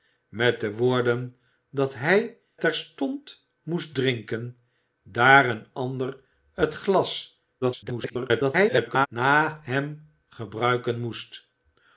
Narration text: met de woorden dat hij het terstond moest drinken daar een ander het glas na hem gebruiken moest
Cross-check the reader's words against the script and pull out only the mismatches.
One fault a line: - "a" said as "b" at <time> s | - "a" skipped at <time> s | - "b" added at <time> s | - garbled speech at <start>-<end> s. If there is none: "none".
- "het" skipped at 2.4 s
- garbled speech at 7.6-9.1 s